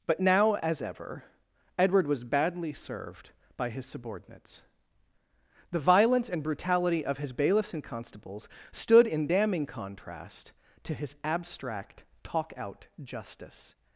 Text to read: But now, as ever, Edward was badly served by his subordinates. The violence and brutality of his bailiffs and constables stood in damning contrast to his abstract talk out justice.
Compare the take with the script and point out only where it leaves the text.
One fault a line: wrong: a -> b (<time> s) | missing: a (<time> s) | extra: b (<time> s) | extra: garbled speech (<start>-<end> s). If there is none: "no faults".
no faults